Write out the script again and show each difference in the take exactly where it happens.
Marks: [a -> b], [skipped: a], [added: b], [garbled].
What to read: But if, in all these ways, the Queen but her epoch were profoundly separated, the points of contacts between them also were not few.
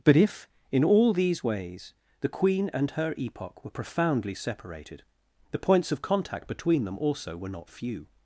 But if, in all these ways, the Queen [but -> and] her epoch were profoundly separated, the points of [contacts -> contact] between them also were not few.